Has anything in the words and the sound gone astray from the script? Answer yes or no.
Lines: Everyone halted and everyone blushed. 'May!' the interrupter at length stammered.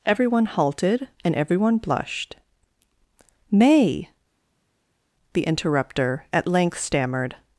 no